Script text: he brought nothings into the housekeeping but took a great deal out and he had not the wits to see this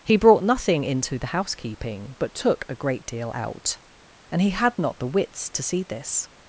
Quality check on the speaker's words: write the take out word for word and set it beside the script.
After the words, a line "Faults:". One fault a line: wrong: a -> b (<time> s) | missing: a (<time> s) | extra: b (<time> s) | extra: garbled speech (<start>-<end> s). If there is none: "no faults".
he brought nothing into the housekeeping but took a great deal out and he had not the wits to see this
Faults:
wrong: nothings -> nothing (0.4 s)